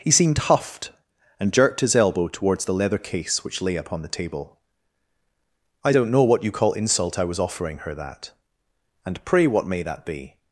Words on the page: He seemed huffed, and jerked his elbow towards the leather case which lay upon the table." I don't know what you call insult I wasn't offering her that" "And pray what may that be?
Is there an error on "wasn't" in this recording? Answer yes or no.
yes